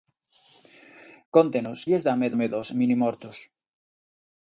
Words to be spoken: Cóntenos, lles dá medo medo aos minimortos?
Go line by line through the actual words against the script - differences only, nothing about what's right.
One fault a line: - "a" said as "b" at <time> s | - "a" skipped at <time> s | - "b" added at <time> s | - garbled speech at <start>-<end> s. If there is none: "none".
none